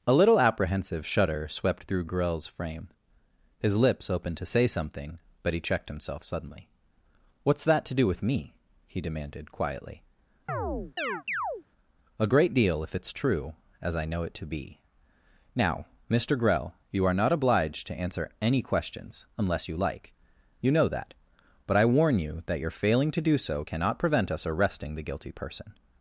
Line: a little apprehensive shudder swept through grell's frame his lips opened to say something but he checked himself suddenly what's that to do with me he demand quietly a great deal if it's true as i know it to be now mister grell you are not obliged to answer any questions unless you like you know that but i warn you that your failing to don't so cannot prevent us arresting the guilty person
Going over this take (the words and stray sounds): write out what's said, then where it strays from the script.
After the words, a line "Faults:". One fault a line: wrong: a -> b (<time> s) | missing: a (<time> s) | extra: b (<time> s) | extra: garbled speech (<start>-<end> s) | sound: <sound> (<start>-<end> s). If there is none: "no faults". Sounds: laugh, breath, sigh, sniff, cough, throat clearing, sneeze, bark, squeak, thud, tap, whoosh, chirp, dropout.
a little apprehensive shudder swept through grell's frame his lips opened to say something but he checked himself suddenly what's that to do with me he demanded quietly a great deal if it's true as i know it to be now mister grell you are not obliged to answer any questions unless you like you know that but i warn you that your failing to do so cannot prevent us arresting the guilty person
Faults:
wrong: demand -> demanded (9.0 s)
sound: chirp (10.5-11.6 s)
wrong: don't -> do (23.2 s)